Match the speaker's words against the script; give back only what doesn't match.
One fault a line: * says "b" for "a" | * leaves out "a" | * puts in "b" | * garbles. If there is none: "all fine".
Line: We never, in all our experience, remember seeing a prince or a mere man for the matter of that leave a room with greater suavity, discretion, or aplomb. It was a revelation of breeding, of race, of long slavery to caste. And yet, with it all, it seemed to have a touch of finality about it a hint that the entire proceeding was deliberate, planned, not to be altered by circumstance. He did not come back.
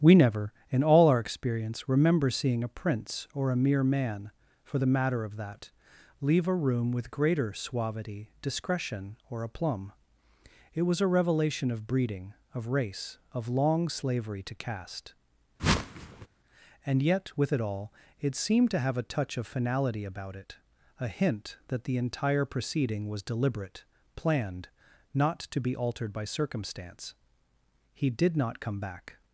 all fine